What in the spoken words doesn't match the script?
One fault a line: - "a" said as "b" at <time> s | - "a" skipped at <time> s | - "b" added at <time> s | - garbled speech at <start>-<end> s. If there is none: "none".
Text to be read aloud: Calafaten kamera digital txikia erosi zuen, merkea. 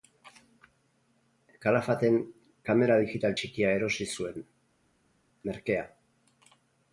none